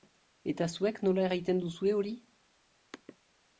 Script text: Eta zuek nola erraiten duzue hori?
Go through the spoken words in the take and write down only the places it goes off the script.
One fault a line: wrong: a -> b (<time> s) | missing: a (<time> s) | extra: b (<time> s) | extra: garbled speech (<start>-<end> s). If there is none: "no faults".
no faults